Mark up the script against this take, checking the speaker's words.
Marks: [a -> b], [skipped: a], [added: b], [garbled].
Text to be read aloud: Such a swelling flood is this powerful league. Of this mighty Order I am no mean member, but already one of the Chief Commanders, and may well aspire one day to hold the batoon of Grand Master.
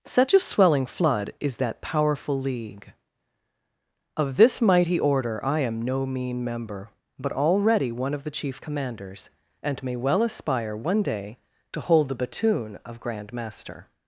Such a swelling flood is [this -> that] powerful league. Of this mighty Order I am no mean member, but already one of the Chief Commanders, and may well aspire one day to hold the batoon of Grand Master.